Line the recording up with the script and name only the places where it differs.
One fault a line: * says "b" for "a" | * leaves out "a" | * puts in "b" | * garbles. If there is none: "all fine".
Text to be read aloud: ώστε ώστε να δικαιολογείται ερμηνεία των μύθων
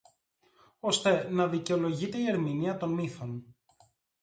* leaves out "ώστε"
* puts in "η"